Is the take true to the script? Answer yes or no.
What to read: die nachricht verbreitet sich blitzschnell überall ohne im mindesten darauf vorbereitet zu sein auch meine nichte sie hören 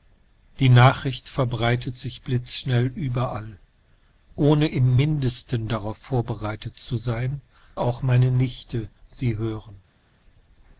yes